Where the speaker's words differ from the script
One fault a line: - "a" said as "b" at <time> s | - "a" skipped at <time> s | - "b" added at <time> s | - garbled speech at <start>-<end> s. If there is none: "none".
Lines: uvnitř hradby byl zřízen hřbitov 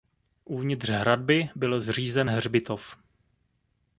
none